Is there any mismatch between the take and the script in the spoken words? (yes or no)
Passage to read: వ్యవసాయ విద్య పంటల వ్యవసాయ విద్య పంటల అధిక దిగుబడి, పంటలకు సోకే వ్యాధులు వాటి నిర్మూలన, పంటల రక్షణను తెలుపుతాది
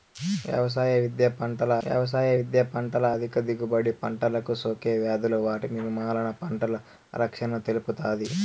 no